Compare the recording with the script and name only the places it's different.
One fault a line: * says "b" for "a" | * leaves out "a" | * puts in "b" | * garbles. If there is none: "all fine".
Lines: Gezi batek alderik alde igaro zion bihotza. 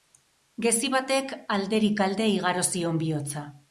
all fine